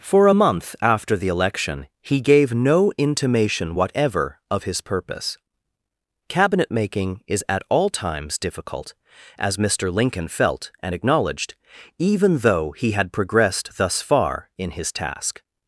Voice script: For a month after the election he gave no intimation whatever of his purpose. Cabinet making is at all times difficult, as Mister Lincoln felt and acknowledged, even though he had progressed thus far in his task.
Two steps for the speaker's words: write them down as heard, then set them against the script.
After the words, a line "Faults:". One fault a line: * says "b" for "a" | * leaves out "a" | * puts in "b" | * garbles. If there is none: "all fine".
For a month after the election he gave no intimation whatever of his purpose. Cabinet making is at all times difficult, as Mister Lincoln felt and acknowledged, even though he had progressed thus far in his task.
Faults:
all fine